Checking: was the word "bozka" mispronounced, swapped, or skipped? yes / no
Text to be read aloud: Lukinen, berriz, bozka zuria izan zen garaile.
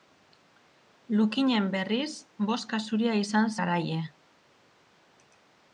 no